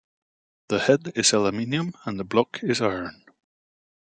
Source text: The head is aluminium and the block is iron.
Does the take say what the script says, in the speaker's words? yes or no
yes